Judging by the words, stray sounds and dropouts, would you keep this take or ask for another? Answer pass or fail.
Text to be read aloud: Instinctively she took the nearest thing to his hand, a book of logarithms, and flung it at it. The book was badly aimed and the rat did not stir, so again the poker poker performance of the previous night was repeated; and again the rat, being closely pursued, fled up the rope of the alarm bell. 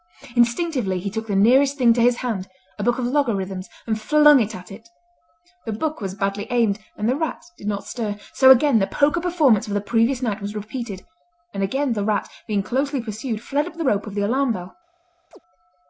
fail